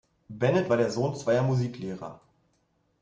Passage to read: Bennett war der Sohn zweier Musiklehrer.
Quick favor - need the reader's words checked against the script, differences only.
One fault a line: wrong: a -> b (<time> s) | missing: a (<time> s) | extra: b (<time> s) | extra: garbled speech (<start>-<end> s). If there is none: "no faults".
no faults